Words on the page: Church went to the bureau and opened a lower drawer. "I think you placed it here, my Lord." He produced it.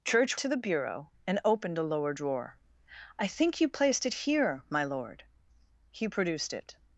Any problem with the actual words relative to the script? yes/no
yes